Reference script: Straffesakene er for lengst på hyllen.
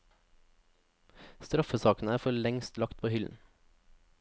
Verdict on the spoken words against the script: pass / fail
fail